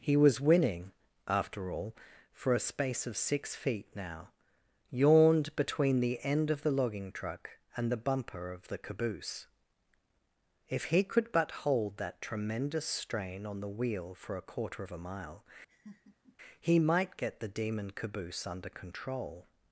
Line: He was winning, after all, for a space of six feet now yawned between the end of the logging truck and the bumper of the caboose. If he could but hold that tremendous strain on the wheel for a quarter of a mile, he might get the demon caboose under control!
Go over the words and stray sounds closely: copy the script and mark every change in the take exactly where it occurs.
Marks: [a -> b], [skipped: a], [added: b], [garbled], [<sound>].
He was winning, after all, for a space of six feet now yawned between the end of the logging truck and the bumper of the caboose. If he could but hold that tremendous strain on the wheel for a quarter of a mile, [laugh] he might get the demon caboose under control!